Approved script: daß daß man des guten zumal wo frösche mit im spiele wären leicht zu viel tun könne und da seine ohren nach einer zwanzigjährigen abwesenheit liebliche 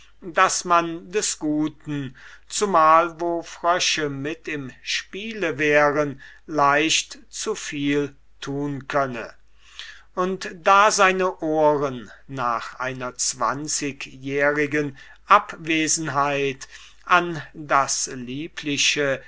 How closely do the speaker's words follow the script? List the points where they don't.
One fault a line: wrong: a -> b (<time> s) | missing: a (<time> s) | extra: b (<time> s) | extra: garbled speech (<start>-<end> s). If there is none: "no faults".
missing: daß (0.7 s)
extra: an das (17.0 s)